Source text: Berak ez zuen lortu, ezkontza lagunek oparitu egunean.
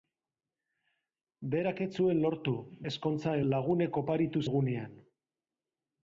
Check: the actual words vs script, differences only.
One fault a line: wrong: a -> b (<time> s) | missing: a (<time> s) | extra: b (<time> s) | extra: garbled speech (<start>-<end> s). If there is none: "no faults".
no faults